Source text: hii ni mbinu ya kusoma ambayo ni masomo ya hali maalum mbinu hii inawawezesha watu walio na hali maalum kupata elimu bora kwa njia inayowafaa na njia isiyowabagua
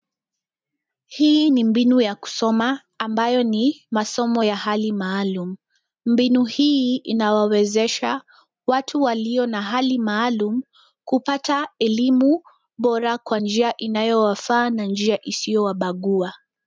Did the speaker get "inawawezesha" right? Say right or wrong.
right